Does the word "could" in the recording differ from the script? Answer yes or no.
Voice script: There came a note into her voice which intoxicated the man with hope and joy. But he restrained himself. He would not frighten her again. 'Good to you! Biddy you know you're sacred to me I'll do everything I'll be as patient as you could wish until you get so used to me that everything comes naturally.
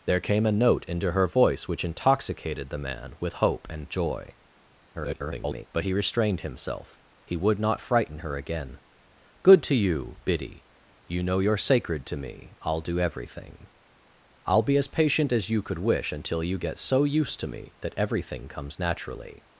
no